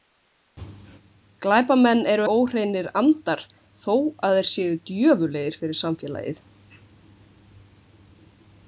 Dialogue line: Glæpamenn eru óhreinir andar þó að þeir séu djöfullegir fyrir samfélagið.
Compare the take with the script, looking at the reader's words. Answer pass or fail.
pass